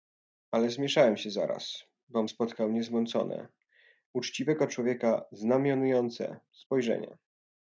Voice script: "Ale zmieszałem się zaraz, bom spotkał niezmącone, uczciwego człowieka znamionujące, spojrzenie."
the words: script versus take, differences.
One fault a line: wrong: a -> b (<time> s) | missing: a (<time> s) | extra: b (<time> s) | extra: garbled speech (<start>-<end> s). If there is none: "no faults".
no faults